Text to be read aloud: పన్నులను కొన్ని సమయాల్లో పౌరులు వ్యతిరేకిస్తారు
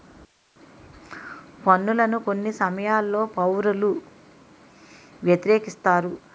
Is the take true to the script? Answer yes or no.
yes